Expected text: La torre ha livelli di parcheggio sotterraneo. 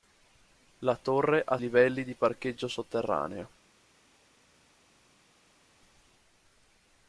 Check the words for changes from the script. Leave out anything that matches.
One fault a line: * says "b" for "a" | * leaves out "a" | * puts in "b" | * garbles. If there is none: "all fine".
all fine